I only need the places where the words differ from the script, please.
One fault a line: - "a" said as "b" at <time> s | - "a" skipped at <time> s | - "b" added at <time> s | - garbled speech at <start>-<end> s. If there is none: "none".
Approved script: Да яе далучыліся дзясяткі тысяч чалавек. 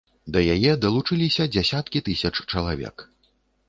none